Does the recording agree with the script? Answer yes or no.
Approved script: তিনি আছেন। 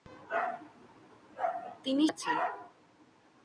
yes